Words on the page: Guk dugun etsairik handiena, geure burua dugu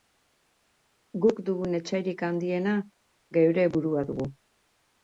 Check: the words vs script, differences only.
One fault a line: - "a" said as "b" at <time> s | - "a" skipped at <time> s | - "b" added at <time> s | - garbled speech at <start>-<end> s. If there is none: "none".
none